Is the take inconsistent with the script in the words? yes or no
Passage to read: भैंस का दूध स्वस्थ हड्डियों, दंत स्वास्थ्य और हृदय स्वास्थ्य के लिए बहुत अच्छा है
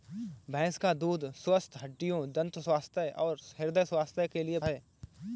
yes